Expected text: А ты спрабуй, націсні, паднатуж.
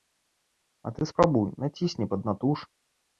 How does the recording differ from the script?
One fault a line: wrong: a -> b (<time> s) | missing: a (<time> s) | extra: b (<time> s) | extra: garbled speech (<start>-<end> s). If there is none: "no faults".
no faults